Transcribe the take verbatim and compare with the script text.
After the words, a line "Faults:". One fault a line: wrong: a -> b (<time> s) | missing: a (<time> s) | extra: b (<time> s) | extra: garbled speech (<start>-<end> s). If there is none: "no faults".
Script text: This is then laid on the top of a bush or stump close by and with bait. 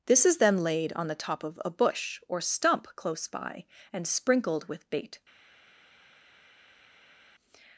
This is then laid on the top of a bush or stump close by and sprinkled with bait.
Faults:
extra: sprinkled (4.1 s)